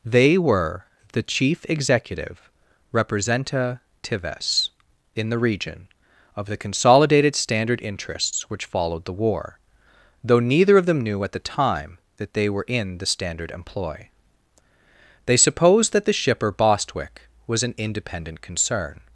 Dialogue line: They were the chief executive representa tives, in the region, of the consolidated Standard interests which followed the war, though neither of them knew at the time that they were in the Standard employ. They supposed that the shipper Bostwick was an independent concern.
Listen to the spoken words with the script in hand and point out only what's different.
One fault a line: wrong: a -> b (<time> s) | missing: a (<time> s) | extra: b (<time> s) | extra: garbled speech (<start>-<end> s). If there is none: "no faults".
no faults